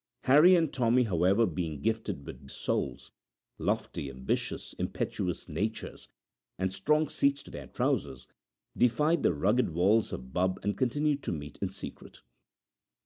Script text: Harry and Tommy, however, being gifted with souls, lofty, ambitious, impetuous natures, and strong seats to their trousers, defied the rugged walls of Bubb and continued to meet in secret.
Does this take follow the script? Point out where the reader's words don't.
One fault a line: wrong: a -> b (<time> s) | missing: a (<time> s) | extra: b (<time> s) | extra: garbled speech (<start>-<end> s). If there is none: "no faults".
no faults